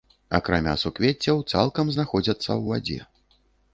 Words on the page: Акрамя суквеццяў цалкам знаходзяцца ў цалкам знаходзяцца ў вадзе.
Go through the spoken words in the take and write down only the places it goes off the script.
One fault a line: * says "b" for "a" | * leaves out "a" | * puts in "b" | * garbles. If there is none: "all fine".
* leaves out "цалкам знаходзяцца ў"